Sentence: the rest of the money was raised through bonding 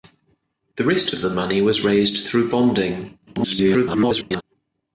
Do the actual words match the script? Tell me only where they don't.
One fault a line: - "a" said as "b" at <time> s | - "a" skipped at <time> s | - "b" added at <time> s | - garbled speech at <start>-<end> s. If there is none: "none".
- garbled speech at 3.3-4.4 s